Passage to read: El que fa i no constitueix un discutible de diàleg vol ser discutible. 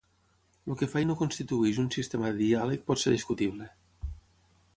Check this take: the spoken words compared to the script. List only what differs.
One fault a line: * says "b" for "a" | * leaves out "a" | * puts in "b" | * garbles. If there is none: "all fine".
* says "sistema" for "discutible"
* says "pot" for "vol"